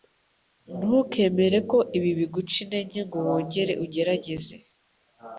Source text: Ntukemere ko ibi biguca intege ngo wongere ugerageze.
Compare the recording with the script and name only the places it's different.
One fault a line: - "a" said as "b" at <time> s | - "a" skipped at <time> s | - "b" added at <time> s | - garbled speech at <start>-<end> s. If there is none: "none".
none